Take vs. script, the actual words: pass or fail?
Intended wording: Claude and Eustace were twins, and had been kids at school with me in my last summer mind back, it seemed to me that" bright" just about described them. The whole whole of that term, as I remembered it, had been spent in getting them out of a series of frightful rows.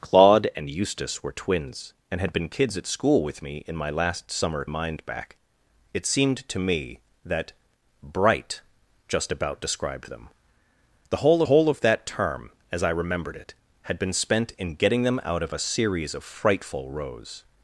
pass